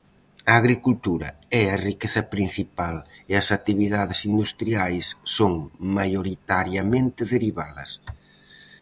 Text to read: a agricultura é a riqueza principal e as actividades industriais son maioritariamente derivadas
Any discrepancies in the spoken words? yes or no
no